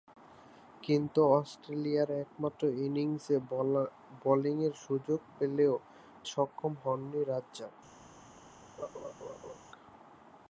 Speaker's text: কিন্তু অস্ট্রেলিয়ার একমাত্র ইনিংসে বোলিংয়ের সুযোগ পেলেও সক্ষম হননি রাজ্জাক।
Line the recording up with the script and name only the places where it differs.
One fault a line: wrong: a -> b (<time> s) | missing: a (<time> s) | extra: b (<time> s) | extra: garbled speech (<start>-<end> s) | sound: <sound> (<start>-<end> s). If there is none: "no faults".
sound: laugh (8.8-9.6 s)